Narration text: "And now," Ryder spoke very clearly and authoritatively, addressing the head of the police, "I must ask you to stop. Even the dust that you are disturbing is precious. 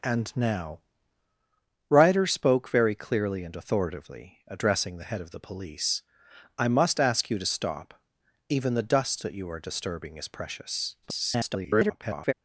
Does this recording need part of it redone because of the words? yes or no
yes